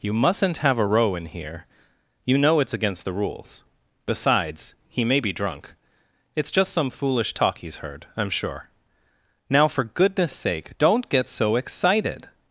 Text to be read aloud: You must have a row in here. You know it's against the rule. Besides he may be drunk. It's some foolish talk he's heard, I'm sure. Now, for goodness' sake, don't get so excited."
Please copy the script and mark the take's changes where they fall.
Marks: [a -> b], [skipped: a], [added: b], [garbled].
You [must -> mustn't] have a row in here. You know it's against the [rule. -> rules] Besides he may be drunk. It's [added: just] some foolish talk he's heard, I'm sure. Now, for goodness' sake, don't get so excited."